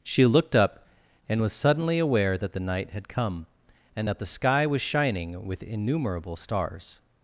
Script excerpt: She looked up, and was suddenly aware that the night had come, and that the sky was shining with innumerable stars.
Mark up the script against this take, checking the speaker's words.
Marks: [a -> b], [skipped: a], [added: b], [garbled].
She looked up, and was suddenly aware that the night had come, and that the sky was shining with innumerable stars.